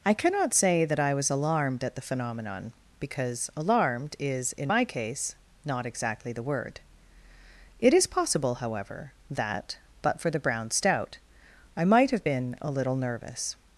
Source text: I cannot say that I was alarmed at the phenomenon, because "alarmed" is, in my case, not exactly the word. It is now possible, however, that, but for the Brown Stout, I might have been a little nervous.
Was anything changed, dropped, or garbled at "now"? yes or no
yes